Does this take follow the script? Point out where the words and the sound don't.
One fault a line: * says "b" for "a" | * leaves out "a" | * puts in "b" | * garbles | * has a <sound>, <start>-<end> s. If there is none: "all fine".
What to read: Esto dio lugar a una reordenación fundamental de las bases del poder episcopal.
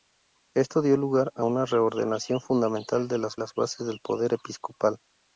* puts in "las"